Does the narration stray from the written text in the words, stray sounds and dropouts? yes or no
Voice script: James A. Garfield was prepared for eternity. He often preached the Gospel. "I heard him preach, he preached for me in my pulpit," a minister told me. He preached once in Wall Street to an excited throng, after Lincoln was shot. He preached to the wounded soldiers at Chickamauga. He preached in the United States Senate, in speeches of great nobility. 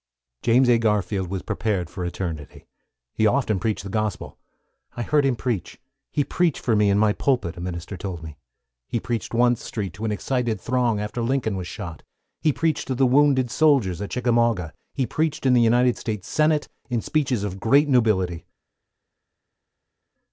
yes